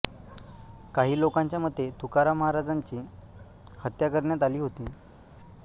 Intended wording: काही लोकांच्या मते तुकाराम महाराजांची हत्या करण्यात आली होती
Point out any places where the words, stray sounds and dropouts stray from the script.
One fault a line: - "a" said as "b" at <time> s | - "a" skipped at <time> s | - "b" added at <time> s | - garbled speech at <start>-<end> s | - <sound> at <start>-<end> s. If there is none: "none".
none